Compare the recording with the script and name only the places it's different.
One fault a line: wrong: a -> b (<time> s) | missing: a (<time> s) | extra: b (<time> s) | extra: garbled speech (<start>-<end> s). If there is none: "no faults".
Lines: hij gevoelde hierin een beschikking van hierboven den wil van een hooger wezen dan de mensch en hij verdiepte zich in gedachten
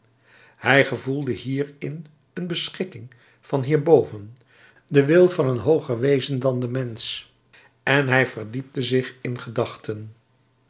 no faults